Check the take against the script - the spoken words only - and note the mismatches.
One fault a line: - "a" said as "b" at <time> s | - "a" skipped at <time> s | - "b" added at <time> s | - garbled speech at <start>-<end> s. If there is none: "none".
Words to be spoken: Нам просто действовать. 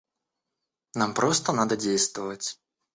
- "надо" added at 1.5 s